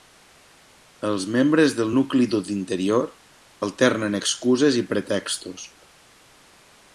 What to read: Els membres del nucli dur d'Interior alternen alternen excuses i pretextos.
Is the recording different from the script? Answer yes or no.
yes